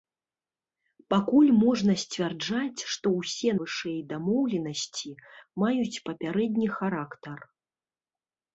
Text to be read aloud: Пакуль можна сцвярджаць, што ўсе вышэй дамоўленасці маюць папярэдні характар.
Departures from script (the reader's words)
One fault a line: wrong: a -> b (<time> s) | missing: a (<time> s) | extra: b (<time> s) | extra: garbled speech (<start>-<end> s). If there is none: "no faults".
no faults